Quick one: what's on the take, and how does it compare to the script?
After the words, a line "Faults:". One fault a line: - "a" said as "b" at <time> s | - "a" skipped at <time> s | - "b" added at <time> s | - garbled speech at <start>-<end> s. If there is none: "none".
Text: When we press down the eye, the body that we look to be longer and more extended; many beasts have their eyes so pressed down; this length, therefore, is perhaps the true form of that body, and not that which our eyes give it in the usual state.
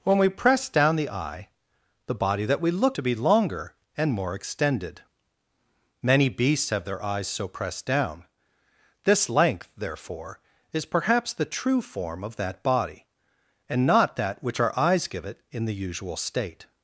When we press down the eye, the body that we look to be longer and more extended; many beasts have their eyes so pressed down; this length, therefore, is perhaps the true form of that body, and not that which our eyes give it in the usual state.
Faults:
none